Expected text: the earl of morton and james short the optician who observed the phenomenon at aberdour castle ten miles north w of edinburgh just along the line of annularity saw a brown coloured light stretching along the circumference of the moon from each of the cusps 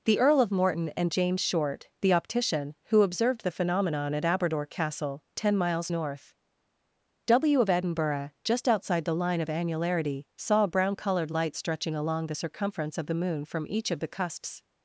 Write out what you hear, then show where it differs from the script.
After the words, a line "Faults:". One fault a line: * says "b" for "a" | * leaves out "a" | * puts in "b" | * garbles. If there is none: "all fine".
the earl of morton and james short the optician who observed the phenomenon at aberdour castle ten miles north w of edinburgh just outside the line of annularity saw a brown coloured light stretching along the circumference of the moon from each of the cusps
Faults:
* says "outside" for "along"